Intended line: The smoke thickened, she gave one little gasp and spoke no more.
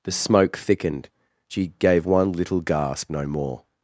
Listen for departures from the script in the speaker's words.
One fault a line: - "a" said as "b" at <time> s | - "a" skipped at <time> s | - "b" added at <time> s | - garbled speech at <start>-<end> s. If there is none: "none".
- "and spoke" skipped at 3.1 s